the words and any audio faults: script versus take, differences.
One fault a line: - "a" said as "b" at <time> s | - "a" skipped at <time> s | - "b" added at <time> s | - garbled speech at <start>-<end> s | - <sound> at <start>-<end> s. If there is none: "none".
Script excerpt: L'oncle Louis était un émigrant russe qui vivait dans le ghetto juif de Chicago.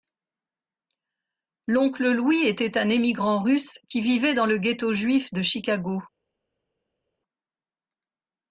none